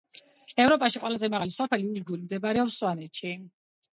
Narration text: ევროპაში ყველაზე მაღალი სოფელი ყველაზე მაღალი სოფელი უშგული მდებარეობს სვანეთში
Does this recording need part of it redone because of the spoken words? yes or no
yes